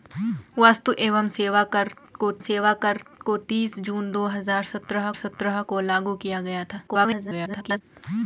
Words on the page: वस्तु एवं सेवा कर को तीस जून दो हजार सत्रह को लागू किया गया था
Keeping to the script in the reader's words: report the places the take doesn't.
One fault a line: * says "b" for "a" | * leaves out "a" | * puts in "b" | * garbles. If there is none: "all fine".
* puts in "सेवा कर को"
* puts in "सत्रह"
* garbles